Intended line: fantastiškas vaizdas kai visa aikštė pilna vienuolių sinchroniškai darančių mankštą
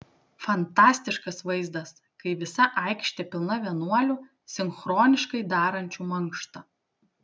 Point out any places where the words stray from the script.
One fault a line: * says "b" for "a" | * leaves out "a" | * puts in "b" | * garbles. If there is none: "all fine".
all fine